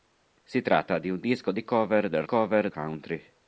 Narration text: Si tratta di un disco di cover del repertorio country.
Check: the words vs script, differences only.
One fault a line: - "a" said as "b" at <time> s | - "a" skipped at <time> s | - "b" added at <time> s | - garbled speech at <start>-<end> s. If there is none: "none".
- "repertorio" said as "cover" at 2.2 s